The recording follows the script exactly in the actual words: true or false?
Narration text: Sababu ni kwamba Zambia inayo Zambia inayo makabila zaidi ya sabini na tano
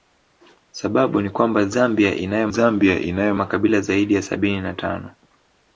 true